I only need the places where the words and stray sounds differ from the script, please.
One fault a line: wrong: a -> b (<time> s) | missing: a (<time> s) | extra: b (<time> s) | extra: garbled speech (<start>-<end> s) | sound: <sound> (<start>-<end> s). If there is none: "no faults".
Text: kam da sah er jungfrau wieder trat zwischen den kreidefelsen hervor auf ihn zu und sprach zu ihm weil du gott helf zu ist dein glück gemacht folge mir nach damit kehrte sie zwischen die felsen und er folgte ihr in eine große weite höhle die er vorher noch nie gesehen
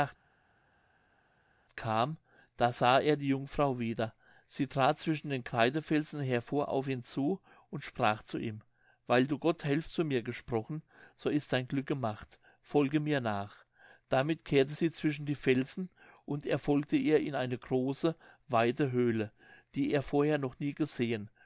extra: die (3.2 s)
extra: sie (4.5 s)
extra: mir gesprochen so (10.0 s)